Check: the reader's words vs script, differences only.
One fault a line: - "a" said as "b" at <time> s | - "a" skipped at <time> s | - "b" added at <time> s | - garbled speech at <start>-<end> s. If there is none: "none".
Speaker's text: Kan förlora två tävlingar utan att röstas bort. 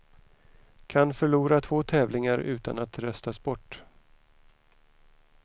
none